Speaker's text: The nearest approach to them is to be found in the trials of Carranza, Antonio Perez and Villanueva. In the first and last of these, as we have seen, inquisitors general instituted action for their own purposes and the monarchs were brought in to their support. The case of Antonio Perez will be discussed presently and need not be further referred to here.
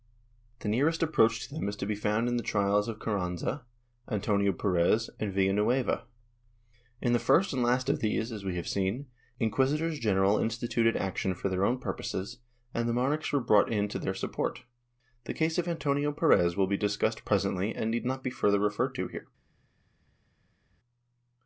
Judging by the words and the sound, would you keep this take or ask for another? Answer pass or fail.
pass